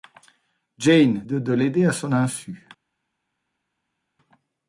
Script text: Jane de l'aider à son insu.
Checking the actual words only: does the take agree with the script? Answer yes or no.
yes